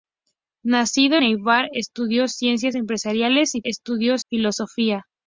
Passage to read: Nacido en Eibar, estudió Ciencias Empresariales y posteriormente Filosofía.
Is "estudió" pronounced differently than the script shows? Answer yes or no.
no